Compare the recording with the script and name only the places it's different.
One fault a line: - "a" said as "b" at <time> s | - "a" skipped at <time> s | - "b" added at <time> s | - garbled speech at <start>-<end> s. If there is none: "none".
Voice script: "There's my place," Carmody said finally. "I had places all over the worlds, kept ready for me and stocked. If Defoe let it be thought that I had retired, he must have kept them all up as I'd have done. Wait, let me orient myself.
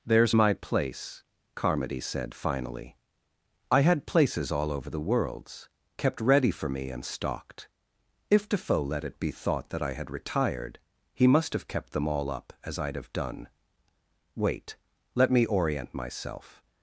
none